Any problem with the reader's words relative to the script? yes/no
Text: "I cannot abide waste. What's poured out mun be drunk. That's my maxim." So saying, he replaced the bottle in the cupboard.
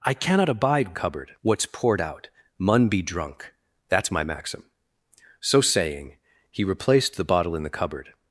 yes